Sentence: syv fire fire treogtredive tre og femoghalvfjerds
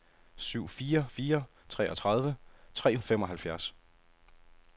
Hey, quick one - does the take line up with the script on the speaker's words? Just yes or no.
yes